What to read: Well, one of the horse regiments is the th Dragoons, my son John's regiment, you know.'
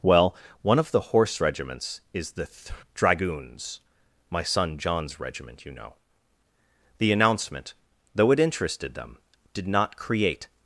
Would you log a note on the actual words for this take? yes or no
yes